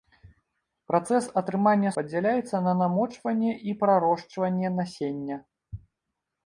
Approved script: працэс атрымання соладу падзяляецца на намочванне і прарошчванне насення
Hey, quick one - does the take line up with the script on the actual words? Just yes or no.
no